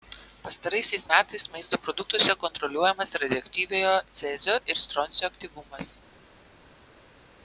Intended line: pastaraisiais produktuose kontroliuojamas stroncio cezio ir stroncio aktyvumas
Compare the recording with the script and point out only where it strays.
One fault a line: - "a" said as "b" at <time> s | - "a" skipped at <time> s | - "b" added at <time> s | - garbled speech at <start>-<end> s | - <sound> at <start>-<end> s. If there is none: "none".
- "metais maisto" added at 1.1 s
- "stroncio" said as "radioaktyviojo" at 3.2 s